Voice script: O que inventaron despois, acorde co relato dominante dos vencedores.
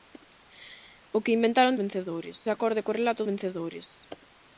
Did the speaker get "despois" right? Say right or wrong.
wrong